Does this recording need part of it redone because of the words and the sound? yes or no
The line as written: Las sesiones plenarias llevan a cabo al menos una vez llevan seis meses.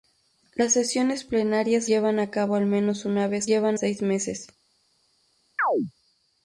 yes